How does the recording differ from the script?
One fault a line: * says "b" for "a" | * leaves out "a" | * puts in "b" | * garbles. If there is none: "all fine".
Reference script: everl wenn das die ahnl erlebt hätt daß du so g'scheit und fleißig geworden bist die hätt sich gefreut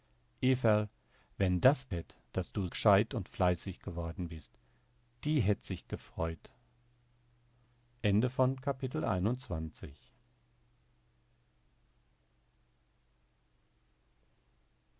* leaves out "die ahnl erlebt"
* leaves out "so"